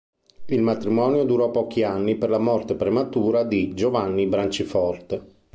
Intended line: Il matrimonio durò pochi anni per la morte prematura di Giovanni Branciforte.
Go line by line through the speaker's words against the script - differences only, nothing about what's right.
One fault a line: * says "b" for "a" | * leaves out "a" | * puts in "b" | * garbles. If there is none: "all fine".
all fine